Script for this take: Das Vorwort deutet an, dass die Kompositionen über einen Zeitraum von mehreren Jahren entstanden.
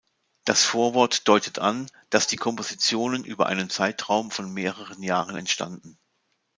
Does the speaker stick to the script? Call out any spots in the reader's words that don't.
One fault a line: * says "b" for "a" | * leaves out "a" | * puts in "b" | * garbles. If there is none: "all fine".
all fine